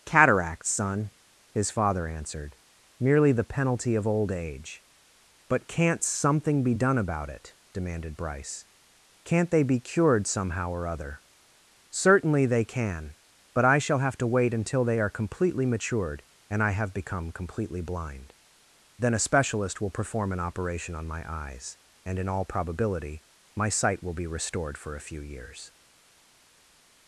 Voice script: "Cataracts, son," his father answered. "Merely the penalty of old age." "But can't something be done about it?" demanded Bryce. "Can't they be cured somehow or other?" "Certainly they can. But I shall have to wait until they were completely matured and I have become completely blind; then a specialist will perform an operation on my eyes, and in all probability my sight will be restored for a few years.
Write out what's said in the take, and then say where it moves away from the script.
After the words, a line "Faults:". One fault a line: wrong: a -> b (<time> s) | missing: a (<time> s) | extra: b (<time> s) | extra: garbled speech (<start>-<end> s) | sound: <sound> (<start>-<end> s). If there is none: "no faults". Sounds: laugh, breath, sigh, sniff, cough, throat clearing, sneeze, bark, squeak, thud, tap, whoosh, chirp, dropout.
"Cataracts, son," his father answered. "Merely the penalty of old age." "But can't something be done about it?" demanded Bryce. "Can't they be cured somehow or other?" "Certainly they can. But I shall have to wait until they are completely matured and I have become completely blind; then a specialist will perform an operation on my eyes, and in all probability my sight will be restored for a few years.
Faults:
wrong: were -> are (15.0 s)